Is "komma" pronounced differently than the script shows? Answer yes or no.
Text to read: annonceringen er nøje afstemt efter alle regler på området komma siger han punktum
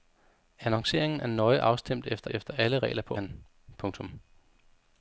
yes